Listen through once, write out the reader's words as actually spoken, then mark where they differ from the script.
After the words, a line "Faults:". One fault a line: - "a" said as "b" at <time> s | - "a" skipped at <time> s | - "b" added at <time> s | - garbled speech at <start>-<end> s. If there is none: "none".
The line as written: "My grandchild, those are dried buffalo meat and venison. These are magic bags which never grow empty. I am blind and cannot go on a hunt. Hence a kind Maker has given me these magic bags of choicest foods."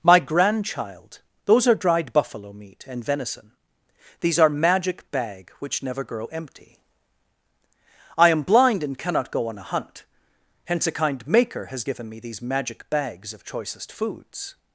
"My grandchild, those are dried buffalo meat and venison. These are magic bag which never grow empty. I am blind and cannot go on a hunt. Hence a kind Maker has given me these magic bags of choicest foods."
Faults:
- "bags" said as "bag" at 5.1 s